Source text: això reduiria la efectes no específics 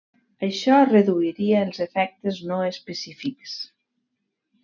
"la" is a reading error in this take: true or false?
true